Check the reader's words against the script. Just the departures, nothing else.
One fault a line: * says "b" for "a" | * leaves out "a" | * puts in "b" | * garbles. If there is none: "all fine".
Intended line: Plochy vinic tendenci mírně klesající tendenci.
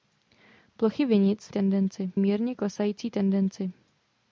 all fine